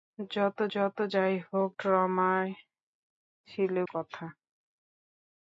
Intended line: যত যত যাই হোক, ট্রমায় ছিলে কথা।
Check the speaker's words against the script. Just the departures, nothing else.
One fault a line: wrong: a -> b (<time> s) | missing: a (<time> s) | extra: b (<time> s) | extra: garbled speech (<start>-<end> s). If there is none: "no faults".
no faults